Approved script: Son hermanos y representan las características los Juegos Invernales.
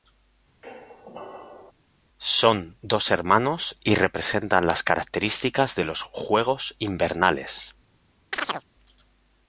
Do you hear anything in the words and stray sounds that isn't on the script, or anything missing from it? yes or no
yes